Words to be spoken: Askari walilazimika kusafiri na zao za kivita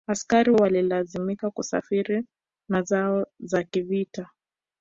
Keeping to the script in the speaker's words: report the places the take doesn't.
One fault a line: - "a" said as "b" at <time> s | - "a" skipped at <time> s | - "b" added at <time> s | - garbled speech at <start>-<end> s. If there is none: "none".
none